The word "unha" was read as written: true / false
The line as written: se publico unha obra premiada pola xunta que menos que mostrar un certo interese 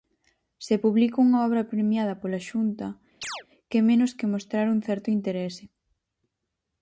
true